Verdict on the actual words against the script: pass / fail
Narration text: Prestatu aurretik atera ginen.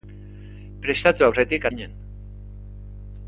fail